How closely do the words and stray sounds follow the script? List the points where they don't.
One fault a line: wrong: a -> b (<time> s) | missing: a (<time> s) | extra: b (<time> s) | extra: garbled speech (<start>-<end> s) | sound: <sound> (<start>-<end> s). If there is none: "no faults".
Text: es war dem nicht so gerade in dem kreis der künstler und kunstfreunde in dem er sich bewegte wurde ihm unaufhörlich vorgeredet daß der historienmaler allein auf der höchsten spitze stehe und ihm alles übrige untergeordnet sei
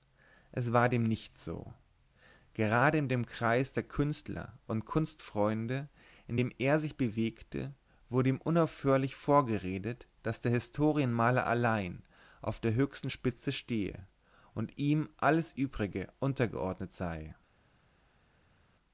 no faults